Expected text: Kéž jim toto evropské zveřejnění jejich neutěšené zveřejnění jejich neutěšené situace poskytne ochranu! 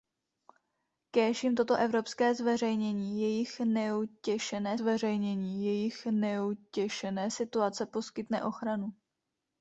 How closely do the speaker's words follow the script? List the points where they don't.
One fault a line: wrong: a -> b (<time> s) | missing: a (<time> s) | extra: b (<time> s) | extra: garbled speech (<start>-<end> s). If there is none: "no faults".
no faults